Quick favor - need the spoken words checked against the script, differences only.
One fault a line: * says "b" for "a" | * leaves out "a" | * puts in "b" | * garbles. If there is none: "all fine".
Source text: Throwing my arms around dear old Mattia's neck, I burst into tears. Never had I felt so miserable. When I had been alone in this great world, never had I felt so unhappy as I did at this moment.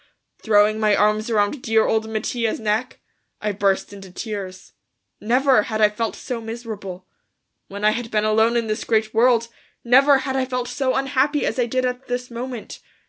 all fine